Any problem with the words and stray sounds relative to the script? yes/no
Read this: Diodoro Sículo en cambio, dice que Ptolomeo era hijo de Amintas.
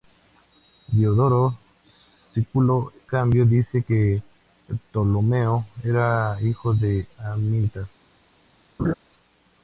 yes